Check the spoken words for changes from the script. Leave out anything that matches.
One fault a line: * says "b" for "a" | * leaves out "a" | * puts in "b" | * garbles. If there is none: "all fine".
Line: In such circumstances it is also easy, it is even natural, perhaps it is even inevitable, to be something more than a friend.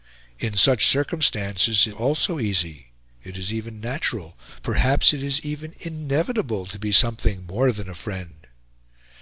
* leaves out "is"